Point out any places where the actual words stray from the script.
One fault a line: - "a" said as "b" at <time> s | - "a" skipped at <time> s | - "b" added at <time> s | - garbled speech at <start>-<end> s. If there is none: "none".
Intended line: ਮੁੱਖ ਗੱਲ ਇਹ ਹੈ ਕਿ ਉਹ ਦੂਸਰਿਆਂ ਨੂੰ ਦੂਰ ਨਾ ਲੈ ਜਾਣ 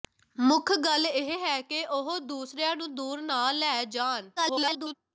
- garbled speech at 4.4-4.9 s